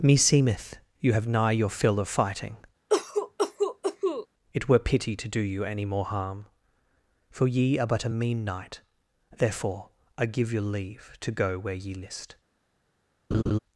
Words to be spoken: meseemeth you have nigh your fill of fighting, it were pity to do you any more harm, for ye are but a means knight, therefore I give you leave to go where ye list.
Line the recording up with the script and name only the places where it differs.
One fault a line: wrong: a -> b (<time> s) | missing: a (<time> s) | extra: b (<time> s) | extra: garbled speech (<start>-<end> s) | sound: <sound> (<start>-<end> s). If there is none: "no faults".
sound: cough (2.9-4.3 s)
wrong: means -> mean (8.1 s)
sound: laugh (13.3-13.6 s)